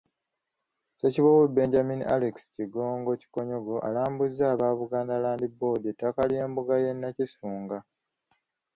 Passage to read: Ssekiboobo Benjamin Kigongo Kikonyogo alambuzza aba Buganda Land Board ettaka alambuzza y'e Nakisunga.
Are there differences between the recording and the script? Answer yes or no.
yes